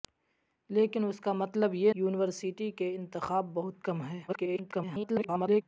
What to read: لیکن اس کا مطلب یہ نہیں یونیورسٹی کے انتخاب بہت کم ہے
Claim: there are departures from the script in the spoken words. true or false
true